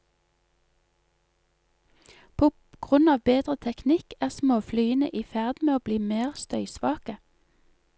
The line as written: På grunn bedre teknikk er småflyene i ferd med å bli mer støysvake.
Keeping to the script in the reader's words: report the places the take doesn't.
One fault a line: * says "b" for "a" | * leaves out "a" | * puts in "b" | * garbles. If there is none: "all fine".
* puts in "av"